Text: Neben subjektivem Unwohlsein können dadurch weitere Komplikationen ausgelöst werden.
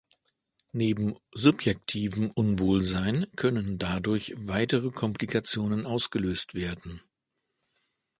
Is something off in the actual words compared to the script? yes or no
no